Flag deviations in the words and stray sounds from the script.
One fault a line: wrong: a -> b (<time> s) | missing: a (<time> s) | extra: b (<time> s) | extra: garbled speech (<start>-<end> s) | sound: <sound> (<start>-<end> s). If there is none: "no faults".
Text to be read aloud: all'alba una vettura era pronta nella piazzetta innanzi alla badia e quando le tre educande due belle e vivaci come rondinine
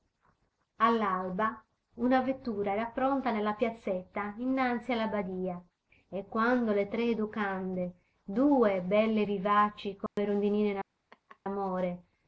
sound: dropout (10.1-10.2 s)
sound: laugh (11.1-11.4 s)